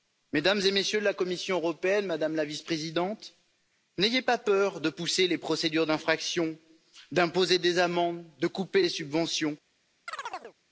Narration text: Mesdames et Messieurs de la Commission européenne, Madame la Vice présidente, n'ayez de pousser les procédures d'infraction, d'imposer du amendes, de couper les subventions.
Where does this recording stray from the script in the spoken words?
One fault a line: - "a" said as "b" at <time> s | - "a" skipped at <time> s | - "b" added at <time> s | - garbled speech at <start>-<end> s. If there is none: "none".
- "pas peur" added at 4.2 s
- "du" said as "des" at 7.6 s